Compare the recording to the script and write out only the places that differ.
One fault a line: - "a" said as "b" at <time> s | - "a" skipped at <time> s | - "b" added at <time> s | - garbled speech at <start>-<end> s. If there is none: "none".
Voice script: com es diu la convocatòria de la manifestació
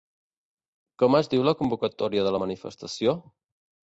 none